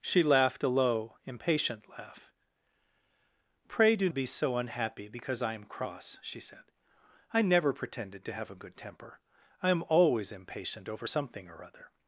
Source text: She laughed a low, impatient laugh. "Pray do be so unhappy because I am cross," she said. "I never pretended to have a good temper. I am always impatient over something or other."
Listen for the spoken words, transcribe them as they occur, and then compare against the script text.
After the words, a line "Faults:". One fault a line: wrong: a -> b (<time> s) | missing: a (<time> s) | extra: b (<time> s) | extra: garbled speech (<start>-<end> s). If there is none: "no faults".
She laughed a low, impatient laugh. "Pray do be so unhappy because I am cross," she said. "I never pretended to have a good temper. I am always impatient over something or other."
Faults:
no faults